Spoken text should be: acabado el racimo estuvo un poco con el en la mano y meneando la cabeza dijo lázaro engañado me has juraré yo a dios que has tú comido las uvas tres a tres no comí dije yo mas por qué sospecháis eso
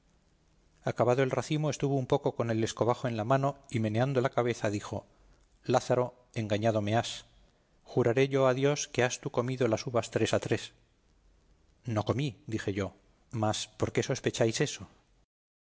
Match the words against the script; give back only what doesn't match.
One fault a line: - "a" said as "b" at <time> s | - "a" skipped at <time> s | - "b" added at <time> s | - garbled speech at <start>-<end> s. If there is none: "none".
- "escobajo" added at 2.6 s